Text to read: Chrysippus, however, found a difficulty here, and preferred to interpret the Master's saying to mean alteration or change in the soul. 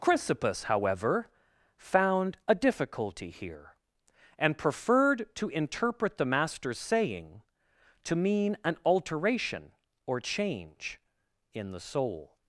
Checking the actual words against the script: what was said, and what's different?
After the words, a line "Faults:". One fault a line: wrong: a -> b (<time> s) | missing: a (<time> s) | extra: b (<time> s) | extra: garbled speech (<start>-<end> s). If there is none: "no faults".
Chrysippus, however, found a difficulty here, and preferred to interpret the Master's saying to mean an alteration or change in the soul.
Faults:
extra: an (8.7 s)